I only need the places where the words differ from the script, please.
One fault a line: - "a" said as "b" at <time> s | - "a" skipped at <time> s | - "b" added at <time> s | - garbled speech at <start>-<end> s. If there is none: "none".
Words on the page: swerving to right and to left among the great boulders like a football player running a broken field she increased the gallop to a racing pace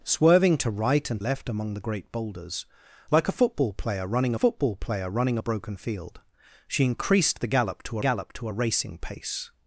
- "to" skipped at 1.2 s
- "football player running" added at 4.3 s
- "gallop to" added at 8.0 s